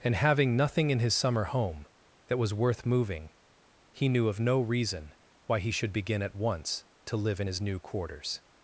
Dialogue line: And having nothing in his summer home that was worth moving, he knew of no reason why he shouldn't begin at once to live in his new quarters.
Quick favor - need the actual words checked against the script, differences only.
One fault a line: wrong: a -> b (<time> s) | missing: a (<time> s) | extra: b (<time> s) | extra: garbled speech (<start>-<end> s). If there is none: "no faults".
wrong: shouldn't -> should (5.7 s)